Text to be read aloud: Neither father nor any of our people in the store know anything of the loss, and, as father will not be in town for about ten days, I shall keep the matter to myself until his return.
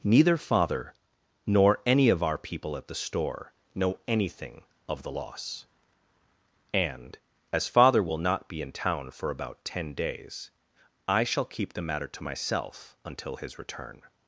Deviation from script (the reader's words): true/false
true